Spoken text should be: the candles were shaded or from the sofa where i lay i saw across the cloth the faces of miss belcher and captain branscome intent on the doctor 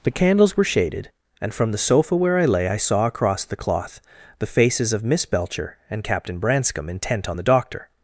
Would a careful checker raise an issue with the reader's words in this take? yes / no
yes